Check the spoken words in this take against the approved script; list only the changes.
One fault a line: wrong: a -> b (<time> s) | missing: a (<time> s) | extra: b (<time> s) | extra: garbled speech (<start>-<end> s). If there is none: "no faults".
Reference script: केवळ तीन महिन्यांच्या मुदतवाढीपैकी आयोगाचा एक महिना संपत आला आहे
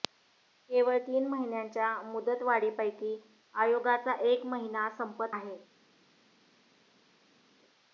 missing: आला (5.3 s)